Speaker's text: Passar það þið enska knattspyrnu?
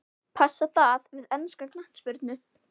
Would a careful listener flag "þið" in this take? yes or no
yes